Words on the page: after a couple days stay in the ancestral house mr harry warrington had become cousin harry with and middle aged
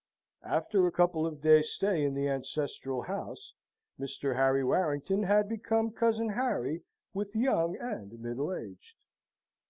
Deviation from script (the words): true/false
true